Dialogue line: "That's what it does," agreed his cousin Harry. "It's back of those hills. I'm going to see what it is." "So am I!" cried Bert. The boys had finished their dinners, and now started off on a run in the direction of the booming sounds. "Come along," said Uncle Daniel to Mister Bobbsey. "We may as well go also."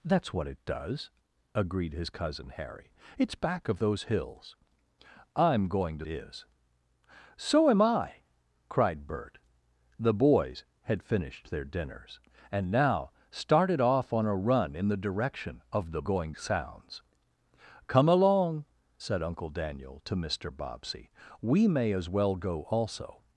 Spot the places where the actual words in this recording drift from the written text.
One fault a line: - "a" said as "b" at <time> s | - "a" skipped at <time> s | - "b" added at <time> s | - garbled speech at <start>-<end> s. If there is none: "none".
- "see what it" skipped at 6.1 s
- "booming" said as "going" at 16.0 s